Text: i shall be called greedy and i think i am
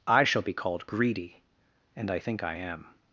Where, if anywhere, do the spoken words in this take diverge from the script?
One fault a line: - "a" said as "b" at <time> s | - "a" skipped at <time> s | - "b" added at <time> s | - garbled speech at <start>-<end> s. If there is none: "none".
none